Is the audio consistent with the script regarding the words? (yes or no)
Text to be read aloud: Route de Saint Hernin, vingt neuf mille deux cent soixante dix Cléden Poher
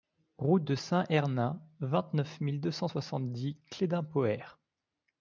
yes